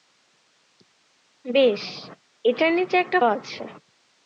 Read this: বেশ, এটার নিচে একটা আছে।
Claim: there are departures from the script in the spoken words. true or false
false